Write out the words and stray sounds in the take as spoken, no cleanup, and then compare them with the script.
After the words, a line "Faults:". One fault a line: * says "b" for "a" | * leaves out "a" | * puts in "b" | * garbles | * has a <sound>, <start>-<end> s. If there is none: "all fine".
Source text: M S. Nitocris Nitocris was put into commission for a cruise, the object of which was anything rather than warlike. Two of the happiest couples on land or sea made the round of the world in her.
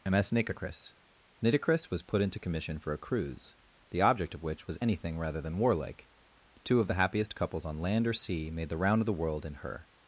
M S. Nitocris Nitocris was put into commission for a cruise, the object of which was anything rather than warlike. Two of the happiest couples on land or sea made the round of the world in her.
Faults:
all fine